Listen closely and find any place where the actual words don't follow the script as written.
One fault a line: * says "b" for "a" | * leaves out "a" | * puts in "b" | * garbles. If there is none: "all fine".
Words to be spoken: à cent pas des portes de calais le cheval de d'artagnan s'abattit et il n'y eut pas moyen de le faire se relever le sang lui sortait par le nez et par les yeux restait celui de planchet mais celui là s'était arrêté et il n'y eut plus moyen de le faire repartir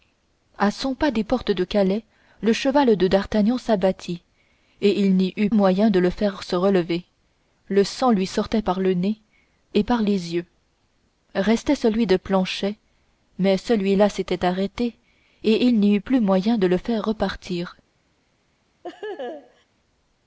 * leaves out "pas"